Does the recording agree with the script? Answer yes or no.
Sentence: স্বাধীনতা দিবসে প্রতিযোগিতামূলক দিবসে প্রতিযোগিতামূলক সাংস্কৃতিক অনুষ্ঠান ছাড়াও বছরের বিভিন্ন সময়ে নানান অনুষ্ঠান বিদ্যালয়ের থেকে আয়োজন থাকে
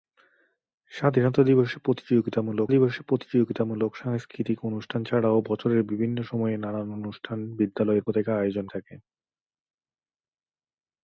yes